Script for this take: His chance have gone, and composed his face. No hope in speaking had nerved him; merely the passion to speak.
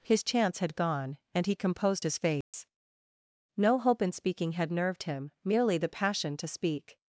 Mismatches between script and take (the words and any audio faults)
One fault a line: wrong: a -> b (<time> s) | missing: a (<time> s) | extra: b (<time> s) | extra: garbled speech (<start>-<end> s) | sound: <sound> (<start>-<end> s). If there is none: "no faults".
wrong: have -> had (0.6 s)
extra: he (1.4 s)
sound: dropout (2.4-2.5 s)